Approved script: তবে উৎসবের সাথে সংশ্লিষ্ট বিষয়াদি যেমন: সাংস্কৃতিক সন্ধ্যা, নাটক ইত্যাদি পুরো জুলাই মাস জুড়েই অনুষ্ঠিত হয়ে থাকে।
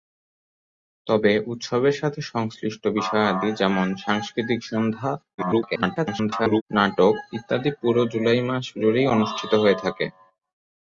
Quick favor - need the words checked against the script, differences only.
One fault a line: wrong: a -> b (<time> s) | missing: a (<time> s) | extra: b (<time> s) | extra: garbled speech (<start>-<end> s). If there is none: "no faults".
extra: garbled speech (5.4-6.6 s)